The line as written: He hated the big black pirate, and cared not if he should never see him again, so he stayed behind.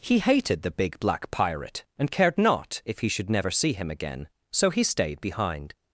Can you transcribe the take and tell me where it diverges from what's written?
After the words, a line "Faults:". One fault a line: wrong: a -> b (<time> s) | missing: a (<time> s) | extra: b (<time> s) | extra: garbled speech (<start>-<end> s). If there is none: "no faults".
He hated the big black pirate, and cared not if he should never see him again, so he stayed behind.
Faults:
no faults